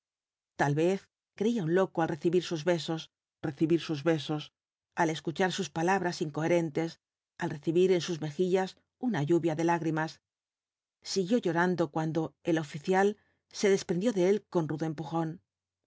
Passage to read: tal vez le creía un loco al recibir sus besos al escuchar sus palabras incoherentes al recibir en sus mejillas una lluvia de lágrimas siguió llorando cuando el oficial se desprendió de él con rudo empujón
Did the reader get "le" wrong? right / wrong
wrong